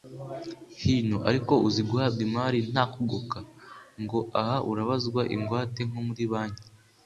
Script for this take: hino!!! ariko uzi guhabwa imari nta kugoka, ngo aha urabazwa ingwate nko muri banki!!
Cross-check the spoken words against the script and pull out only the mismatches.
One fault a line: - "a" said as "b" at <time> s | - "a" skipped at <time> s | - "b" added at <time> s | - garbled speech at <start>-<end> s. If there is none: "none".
none